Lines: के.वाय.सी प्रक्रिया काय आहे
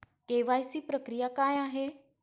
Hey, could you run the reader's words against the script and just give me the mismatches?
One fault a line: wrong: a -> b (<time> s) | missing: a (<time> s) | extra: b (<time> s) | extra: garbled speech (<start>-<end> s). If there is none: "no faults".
no faults